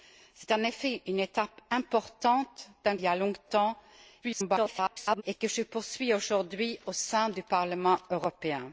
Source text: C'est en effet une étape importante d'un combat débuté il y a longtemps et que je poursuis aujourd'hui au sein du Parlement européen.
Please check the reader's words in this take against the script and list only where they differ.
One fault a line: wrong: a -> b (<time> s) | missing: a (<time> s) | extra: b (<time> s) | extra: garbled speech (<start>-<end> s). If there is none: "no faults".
missing: combat débuté il (3.0 s)
extra: garbled speech (4.2-5.2 s)